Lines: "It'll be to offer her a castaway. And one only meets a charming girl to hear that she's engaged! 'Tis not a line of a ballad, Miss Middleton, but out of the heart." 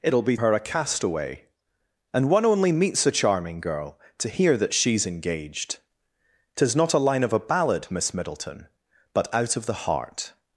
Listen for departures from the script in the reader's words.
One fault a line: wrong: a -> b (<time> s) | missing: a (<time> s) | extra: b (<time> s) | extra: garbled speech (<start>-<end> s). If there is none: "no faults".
missing: to offer (0.4 s)